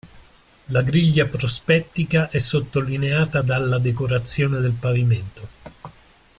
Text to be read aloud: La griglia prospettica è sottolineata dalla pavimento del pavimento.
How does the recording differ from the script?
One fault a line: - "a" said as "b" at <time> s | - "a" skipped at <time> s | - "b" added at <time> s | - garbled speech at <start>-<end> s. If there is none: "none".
- "pavimento" said as "decorazione" at 3.8 s